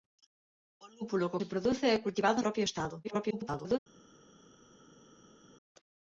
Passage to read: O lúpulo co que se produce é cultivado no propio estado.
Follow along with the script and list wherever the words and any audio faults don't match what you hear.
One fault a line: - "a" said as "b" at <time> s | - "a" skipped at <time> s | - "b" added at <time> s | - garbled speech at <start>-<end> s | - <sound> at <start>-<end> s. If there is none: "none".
- "que" skipped at 1.4 s
- "no" skipped at 2.4 s
- garbled speech at 3.0-3.8 s